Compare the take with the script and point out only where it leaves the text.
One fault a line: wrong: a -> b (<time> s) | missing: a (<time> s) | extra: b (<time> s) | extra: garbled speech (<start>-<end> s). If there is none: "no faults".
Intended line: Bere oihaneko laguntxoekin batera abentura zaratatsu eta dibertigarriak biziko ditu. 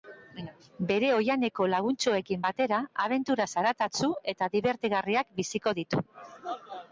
no faults